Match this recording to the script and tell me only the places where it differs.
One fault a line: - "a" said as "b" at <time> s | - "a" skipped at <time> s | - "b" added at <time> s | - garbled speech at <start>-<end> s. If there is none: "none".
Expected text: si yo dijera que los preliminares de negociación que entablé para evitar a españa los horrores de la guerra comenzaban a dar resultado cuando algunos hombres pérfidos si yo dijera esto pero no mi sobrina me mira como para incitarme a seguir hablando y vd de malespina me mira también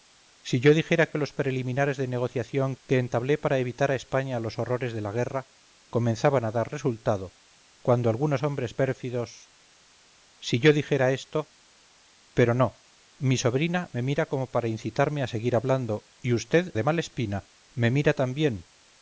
none